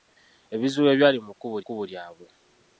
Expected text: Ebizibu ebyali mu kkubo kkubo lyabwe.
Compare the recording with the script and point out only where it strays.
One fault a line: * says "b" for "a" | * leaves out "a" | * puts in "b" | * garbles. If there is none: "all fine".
all fine